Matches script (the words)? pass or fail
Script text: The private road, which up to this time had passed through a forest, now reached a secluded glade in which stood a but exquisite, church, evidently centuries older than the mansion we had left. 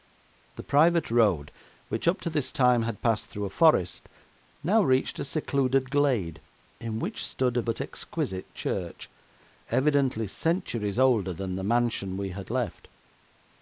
pass